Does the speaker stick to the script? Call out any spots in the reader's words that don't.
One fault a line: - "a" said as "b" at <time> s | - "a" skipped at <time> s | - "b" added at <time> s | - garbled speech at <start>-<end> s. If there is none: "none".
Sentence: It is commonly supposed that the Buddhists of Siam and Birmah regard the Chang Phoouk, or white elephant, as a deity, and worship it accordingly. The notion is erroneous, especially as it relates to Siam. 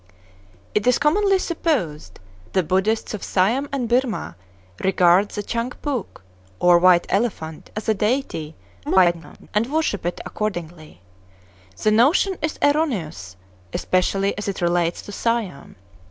- "that" skipped at 2.2 s
- garbled speech at 8.9-9.5 s